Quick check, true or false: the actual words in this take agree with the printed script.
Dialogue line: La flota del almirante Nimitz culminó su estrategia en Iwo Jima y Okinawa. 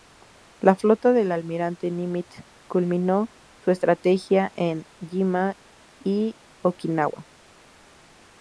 false